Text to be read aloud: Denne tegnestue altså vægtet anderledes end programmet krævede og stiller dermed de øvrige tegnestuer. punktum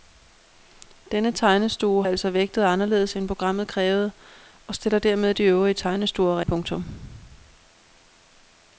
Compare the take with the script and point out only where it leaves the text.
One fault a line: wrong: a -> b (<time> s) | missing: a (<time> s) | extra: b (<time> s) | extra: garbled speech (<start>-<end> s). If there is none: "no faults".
no faults